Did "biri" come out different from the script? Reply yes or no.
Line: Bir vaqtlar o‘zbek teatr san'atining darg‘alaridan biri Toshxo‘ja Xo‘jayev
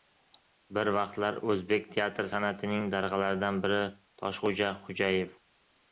no